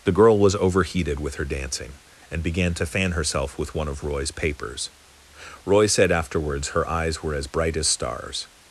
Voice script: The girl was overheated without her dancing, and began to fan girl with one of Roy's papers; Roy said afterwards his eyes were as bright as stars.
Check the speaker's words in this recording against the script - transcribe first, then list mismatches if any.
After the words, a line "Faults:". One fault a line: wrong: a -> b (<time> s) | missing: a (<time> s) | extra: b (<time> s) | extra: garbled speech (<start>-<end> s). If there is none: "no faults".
The girl was overheated with her dancing, and began to fan herself with one of Roy's papers; Roy said afterwards her eyes were as bright as stars.
Faults:
wrong: without -> with (1.2 s)
wrong: girl -> herself (3.1 s)
wrong: his -> her (6.7 s)